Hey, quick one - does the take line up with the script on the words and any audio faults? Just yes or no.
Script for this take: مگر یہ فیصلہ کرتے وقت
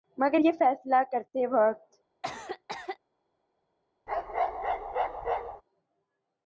no